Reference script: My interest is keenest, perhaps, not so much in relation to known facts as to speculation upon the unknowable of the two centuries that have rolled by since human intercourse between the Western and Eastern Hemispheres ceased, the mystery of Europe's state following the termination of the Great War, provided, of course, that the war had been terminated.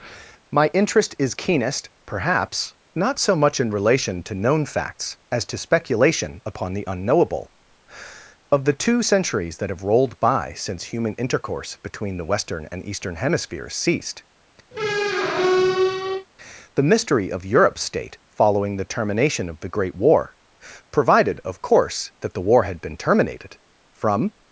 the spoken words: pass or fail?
fail